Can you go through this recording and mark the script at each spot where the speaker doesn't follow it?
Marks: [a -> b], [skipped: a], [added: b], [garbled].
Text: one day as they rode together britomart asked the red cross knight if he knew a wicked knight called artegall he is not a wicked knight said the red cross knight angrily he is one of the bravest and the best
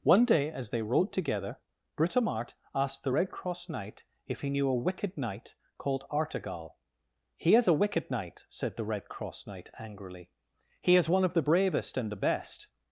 one day as they rode together britomart asked the red cross knight if he knew a wicked knight called artegall he is [skipped: not] a wicked knight said the red cross knight angrily he is one of the bravest and the best